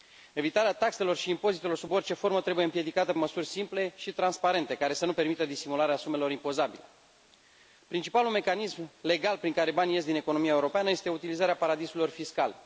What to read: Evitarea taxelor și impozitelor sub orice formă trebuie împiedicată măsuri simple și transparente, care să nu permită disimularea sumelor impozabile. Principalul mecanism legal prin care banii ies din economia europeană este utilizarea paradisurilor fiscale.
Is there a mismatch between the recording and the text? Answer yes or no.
no